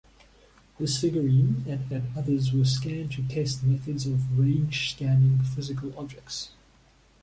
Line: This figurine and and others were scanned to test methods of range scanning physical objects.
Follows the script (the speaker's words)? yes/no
yes